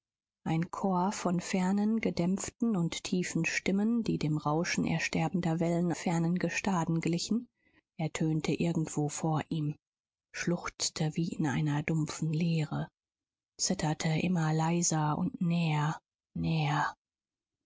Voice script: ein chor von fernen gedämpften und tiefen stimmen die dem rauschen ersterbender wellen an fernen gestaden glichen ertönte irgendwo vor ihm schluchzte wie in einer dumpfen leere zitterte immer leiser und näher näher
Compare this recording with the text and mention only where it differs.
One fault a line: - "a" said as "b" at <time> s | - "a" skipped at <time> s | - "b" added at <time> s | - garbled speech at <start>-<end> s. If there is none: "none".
- "an" skipped at 5.9 s